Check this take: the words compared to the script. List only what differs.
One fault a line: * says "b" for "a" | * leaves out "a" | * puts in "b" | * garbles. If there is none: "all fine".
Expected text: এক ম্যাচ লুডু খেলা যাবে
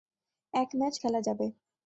* leaves out "লুডু"